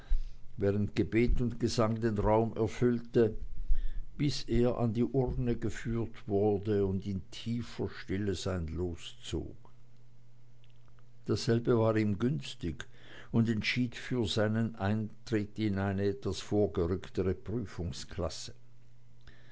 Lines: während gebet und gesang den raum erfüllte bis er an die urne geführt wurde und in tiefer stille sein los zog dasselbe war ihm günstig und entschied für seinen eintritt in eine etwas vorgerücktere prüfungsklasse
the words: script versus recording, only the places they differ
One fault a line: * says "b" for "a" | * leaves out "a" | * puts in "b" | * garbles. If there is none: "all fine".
all fine